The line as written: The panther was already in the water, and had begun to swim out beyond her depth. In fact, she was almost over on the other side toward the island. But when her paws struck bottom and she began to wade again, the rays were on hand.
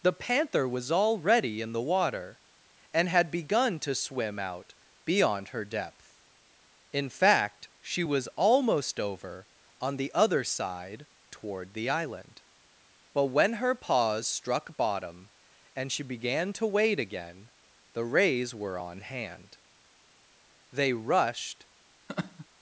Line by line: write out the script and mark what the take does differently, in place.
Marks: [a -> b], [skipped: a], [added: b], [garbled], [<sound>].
The panther was already in the water, and had begun to swim out beyond her depth. In fact, she was almost over on the other side toward the island. But when her paws struck bottom and she began to wade again, the rays were on hand. [added: They rushed] [laugh]